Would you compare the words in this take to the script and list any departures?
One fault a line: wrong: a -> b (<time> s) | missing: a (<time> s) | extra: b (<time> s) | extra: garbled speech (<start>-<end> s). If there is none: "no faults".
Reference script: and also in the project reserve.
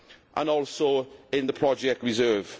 no faults